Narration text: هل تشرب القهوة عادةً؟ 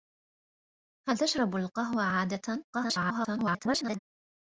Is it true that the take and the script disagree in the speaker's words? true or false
true